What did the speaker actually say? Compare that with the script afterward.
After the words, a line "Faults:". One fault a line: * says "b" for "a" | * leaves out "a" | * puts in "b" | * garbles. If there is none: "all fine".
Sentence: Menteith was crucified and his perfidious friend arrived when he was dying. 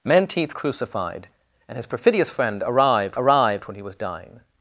Menteith crucified and his perfidious friend arrived arrived when he was dying.
Faults:
* leaves out "was"
* puts in "arrived"